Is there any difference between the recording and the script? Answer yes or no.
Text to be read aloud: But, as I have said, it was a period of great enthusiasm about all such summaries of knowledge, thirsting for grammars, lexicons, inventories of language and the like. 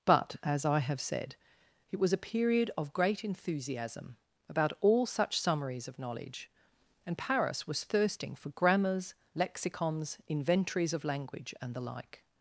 yes